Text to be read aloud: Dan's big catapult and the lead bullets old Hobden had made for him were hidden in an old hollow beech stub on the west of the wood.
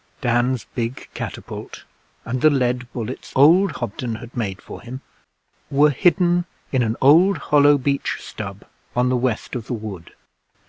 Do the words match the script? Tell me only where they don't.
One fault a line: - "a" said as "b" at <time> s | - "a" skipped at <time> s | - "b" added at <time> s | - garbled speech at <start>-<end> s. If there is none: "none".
none